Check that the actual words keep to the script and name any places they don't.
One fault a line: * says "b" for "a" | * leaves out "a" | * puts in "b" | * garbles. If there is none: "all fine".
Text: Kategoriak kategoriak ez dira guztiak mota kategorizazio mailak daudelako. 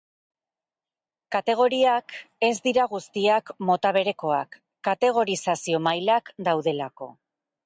* leaves out "kategoriak"
* puts in "berekoak"